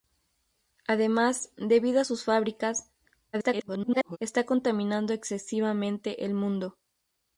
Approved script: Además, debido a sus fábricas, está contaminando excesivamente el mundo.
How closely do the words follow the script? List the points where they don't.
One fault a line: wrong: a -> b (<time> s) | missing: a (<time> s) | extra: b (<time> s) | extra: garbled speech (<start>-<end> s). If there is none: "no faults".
extra: garbled speech (3.3-4.2 s)